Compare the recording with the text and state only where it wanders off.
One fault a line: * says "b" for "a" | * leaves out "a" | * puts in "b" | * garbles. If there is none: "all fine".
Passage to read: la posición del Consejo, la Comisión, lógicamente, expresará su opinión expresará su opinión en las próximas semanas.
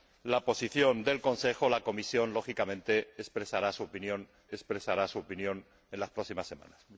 all fine